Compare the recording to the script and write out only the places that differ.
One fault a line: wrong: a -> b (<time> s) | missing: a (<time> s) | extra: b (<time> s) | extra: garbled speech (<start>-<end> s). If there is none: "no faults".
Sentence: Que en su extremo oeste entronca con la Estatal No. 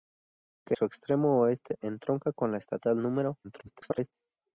missing: en (0.7 s)
extra: garbled speech (3.4-4.1 s)